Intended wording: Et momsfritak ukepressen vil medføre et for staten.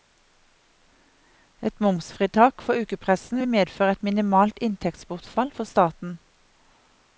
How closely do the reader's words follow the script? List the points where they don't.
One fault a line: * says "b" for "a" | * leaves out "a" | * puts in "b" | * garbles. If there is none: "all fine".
* puts in "for"
* puts in "minimalt inntektsbortfall"